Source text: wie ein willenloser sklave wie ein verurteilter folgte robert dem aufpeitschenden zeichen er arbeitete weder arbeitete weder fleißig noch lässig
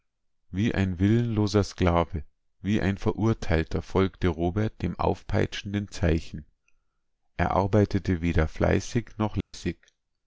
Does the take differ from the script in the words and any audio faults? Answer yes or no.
yes